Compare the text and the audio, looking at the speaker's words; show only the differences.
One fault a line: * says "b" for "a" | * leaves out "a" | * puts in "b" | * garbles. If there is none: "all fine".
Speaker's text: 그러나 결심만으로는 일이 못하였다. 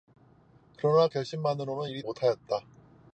all fine